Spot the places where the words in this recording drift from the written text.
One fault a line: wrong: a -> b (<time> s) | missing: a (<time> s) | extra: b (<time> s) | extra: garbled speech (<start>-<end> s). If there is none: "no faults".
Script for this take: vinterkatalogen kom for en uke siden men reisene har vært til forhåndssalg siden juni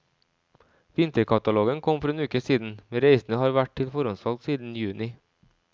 no faults